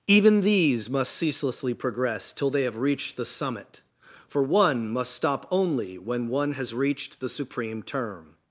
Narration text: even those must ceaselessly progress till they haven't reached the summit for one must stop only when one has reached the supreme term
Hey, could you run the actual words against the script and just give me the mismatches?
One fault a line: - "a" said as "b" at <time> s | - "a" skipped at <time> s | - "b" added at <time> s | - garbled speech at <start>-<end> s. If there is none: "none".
- "those" said as "these" at 0.4 s
- "haven't" said as "have" at 2.6 s